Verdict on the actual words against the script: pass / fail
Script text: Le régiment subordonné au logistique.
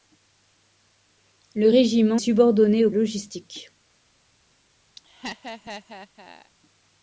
pass